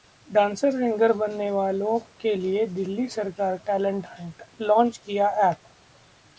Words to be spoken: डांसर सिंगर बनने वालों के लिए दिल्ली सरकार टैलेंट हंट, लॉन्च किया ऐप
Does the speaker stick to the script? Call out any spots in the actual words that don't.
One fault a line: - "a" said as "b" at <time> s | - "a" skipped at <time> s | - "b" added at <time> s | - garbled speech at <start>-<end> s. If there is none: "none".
none